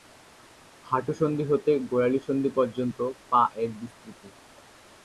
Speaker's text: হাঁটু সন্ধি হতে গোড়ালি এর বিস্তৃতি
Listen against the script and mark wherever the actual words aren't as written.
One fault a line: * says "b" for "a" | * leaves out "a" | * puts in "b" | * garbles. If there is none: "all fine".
* puts in "সন্ধি পর্যন্ত পা"